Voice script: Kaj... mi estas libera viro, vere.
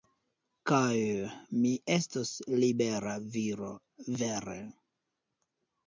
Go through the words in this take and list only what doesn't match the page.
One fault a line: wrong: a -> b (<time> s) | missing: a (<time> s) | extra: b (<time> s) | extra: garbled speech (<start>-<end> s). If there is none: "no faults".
wrong: estas -> estos (2.0 s)